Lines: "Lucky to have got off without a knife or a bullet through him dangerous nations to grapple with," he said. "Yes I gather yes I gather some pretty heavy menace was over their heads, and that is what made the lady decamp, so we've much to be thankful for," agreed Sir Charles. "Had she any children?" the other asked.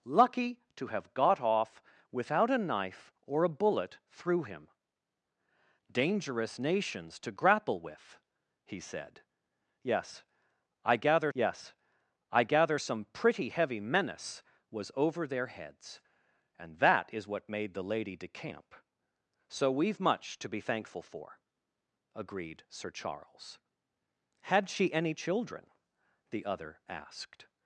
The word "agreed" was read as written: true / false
true